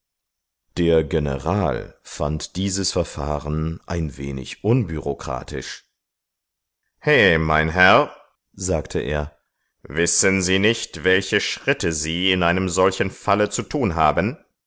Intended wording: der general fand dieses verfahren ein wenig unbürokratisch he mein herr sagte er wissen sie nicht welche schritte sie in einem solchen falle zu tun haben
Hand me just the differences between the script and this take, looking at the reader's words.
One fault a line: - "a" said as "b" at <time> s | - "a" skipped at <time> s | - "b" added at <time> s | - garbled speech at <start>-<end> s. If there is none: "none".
none